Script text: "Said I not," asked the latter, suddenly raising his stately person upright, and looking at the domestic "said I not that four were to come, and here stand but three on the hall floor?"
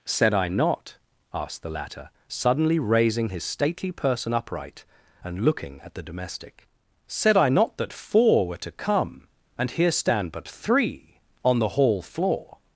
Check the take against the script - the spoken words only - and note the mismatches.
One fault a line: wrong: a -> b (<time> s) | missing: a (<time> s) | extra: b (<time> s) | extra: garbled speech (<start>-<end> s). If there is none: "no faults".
no faults